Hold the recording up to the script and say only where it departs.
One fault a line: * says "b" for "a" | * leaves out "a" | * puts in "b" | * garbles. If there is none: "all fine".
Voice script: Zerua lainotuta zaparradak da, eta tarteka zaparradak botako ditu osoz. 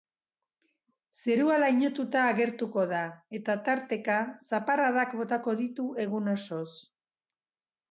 * says "agertuko" for "zaparradak"
* puts in "egun"